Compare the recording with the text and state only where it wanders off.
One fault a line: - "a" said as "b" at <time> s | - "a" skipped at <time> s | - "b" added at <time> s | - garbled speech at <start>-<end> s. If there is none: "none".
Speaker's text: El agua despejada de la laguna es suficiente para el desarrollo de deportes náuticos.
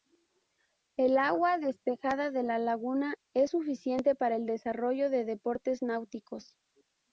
none